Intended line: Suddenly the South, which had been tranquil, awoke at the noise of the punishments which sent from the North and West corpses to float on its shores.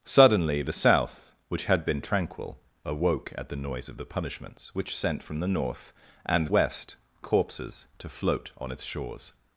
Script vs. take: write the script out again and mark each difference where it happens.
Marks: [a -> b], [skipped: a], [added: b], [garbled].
Suddenly the South, which had been tranquil, awoke at the noise of the punishments which sent from the North and West corpses to float on its shores.